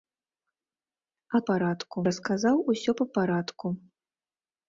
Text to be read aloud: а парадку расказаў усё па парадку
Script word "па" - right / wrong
right